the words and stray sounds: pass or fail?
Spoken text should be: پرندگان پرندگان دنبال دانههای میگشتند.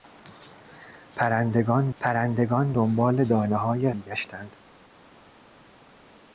pass